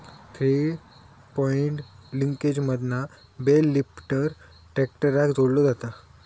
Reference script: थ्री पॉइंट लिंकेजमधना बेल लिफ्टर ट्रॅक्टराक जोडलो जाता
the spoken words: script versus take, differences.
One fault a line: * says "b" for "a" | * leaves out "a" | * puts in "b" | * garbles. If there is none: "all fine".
all fine